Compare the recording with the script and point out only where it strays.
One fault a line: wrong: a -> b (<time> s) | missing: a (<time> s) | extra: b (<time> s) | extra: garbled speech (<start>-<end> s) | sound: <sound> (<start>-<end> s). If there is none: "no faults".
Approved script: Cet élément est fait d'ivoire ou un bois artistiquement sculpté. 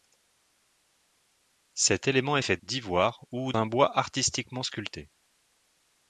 no faults